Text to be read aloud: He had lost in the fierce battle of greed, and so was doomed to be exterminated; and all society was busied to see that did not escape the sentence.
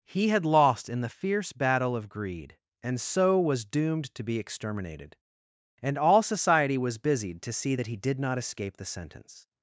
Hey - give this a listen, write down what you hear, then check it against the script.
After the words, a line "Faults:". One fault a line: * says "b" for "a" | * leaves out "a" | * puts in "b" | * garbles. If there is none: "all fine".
He had lost in the fierce battle of greed, and so was doomed to be exterminated; and all society was busied to see that he did not escape the sentence.
Faults:
* puts in "he"